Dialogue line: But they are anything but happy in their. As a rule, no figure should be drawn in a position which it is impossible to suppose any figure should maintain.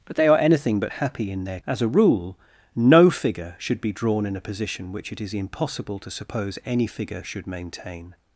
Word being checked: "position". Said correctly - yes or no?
yes